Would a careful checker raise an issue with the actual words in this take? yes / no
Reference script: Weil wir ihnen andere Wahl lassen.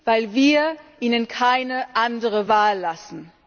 yes